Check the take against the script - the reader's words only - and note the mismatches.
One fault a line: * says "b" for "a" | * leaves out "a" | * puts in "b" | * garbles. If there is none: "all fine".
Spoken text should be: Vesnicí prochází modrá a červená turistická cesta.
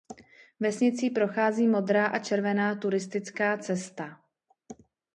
all fine